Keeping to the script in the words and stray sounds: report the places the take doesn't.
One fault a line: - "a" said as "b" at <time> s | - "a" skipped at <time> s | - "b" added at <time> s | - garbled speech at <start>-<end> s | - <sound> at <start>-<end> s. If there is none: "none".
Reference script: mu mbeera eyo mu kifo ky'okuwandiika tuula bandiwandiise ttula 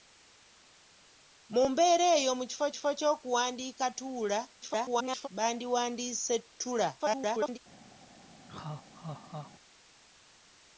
- "kifo" added at 2.7 s
- garbled speech at 4.6-5.3 s
- garbled speech at 7.0-7.6 s
- laugh at 8.5-9.5 s